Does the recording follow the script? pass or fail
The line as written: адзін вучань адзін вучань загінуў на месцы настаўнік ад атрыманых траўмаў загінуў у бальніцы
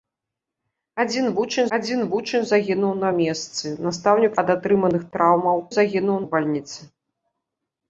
pass